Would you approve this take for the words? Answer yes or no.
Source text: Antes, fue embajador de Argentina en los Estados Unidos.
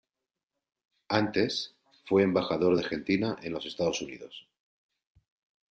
yes